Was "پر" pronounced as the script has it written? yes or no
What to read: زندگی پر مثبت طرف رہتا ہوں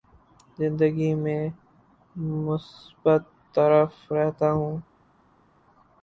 no